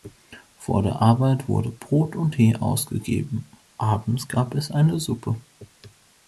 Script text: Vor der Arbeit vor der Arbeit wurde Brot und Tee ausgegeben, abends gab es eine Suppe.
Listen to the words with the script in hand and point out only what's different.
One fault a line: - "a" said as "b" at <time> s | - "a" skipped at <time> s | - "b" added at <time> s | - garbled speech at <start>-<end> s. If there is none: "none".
- "vor der Arbeit" skipped at 1.5 s